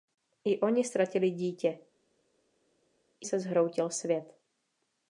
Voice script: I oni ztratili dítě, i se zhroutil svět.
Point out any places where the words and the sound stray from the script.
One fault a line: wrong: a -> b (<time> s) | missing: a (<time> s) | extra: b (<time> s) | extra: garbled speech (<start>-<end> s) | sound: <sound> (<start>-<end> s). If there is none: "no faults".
no faults